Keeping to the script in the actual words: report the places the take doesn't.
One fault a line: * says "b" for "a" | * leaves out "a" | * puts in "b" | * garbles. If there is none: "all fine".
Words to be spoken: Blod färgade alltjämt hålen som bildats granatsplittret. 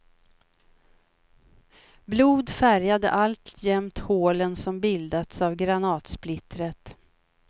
* puts in "av"